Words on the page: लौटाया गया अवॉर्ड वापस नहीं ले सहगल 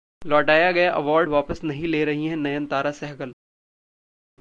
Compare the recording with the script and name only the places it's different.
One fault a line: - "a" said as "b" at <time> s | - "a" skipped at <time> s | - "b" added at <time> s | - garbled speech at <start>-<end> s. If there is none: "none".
- "रही हैं नयनतारा" added at 2.1 s